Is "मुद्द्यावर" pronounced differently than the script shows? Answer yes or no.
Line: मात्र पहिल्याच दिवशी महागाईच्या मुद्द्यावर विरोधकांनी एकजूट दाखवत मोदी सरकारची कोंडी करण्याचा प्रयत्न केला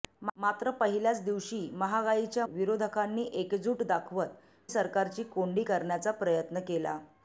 yes